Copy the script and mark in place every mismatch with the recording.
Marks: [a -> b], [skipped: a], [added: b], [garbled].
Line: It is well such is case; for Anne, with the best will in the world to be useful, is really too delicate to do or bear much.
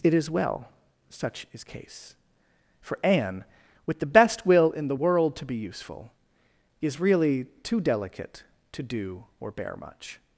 It is well such is case; for Anne, with the best will in the world to be useful, is really too delicate to do or bear much.